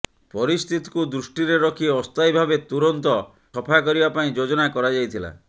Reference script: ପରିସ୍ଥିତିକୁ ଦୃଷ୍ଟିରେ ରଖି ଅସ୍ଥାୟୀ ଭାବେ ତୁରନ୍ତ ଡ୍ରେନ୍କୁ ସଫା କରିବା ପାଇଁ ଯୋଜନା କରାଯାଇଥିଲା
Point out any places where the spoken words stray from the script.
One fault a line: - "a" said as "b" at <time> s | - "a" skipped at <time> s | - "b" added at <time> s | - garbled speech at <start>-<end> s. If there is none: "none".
- "ଡ୍ରେନ୍କୁ" skipped at 3.1 s